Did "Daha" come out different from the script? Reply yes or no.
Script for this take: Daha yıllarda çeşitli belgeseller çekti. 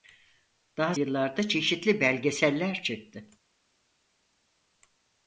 no